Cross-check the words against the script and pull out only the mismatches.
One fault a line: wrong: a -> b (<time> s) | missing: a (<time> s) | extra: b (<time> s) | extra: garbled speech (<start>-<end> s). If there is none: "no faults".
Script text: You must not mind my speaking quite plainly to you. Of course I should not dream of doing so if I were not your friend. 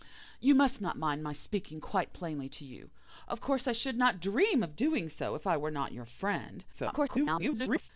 extra: garbled speech (6.7-7.9 s)